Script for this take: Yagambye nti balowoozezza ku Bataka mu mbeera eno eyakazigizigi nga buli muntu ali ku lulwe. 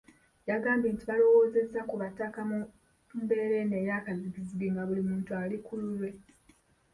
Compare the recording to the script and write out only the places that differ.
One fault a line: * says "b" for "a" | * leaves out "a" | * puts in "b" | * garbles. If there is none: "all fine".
all fine